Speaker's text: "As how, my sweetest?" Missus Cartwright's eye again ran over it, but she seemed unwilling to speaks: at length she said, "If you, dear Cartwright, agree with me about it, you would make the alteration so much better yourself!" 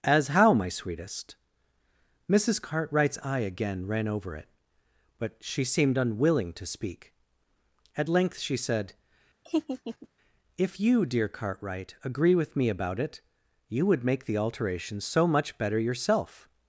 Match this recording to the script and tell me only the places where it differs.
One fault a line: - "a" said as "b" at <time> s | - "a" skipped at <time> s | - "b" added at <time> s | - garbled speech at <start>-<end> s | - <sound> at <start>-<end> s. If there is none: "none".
- "speaks" said as "speak" at 6.7 s
- laugh at 9.5-10.1 s